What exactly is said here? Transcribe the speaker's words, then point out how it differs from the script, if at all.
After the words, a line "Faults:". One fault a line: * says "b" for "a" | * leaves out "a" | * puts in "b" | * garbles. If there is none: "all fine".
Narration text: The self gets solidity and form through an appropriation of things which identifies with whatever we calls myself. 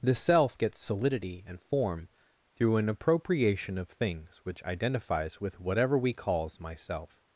The self gets solidity and form through an appropriation of things which identifies with whatever we calls myself.
Faults:
all fine